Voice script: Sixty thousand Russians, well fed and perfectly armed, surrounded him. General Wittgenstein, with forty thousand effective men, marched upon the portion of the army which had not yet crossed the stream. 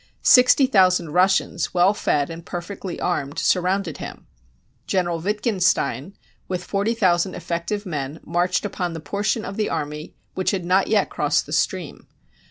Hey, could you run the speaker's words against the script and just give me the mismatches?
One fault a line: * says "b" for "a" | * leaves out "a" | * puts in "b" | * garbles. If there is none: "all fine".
all fine